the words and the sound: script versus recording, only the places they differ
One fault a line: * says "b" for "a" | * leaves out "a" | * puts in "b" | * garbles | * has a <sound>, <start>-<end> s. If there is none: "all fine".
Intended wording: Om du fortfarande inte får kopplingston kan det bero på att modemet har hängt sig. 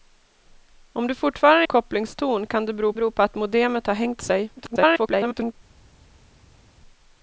* leaves out "inte får"
* puts in "bero"
* garbles